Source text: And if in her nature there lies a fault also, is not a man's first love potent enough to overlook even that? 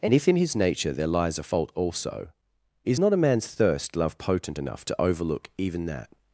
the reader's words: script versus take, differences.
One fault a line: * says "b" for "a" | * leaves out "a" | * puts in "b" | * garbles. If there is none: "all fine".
* says "his" for "her"
* says "thirst" for "first"